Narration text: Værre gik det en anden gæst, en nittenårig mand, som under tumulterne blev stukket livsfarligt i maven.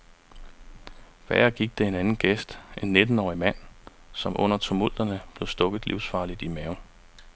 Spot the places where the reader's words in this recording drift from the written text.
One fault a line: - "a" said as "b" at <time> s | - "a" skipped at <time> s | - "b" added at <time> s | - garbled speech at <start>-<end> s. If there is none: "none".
none